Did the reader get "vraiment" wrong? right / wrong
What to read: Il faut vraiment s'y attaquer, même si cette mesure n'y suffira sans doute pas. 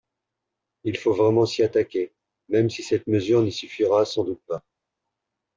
right